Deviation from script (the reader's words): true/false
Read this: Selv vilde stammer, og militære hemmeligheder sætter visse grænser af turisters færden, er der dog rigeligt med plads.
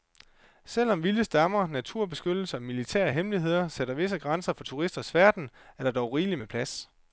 true